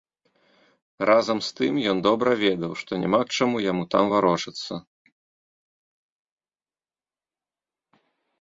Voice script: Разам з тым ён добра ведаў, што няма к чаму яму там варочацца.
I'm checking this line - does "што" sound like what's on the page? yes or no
yes